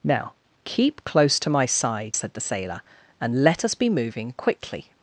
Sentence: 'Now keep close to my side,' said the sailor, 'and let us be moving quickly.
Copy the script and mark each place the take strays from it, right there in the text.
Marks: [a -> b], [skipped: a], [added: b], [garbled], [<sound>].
'Now keep close to my side,' said the sailor, 'and let us be moving quickly.